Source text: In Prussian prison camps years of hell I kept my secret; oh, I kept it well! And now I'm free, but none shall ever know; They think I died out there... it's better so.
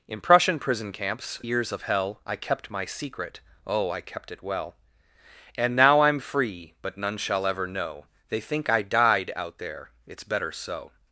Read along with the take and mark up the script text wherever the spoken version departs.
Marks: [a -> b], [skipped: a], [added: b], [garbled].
In Prussian prison camps years of hell I kept my secret; oh, I kept it well! And now I'm free, but none shall ever know; They think I died out there... it's better so.